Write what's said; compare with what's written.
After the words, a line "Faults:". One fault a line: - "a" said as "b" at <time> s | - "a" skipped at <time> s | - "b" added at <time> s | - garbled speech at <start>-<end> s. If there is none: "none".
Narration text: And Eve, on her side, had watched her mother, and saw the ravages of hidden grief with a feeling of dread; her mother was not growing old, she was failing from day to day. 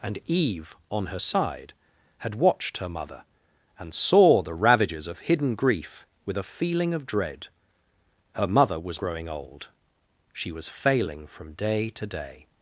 And Eve, on her side, had watched her mother, and saw the ravages of hidden grief with a feeling of dread; her mother was growing old, she was failing from day to day.
Faults:
- "not" skipped at 9.0 s